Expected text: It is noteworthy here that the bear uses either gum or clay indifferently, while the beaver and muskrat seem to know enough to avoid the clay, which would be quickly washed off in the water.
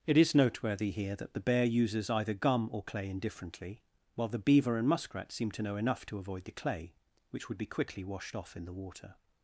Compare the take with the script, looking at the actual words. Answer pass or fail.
pass